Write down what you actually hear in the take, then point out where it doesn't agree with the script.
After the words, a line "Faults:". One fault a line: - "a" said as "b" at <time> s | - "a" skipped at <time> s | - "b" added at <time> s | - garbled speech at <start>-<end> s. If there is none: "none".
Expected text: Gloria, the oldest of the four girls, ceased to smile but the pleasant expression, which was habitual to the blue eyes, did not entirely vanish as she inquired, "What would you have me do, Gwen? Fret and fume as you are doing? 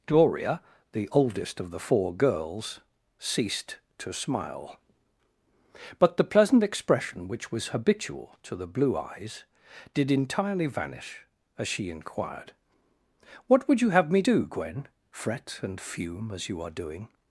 Gloria, the oldest of the four girls, ceased to smile but the pleasant expression, which was habitual to the blue eyes, did entirely vanish as she inquired, "What would you have me do, Gwen? Fret and fume as you are doing?
Faults:
- "not" skipped at 10.1 s